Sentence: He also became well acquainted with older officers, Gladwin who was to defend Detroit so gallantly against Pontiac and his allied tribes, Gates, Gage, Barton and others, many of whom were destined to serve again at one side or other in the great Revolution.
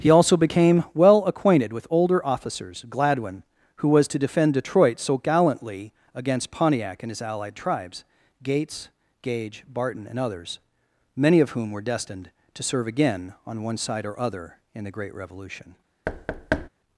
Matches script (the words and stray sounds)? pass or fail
fail